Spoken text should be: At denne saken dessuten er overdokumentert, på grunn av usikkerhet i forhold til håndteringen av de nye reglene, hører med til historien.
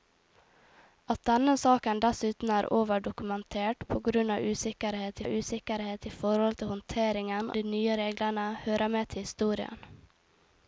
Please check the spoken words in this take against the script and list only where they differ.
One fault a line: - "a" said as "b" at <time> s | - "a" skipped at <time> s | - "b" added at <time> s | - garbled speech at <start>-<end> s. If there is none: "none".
- "av usikkerhet" added at 5.2 s
- "av" skipped at 7.5 s